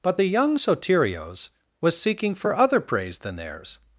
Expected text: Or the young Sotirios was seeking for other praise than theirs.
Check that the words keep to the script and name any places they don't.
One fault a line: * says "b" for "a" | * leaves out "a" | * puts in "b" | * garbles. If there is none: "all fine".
* says "But" for "Or"